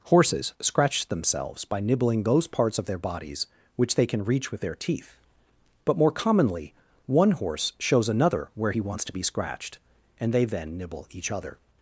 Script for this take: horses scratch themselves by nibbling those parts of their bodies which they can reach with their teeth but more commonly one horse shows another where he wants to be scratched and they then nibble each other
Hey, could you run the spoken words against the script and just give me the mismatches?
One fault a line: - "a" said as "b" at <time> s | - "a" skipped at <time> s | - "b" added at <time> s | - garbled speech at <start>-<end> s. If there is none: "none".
none